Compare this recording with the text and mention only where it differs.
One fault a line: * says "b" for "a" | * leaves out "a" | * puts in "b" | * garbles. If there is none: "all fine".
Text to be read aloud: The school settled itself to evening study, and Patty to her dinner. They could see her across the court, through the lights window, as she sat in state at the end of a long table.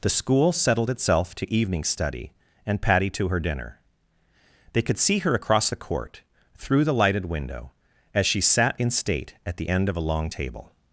* says "lighted" for "lights"